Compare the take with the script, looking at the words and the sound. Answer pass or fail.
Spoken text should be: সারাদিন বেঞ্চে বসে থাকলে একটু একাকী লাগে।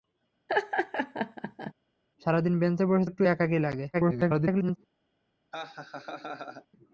fail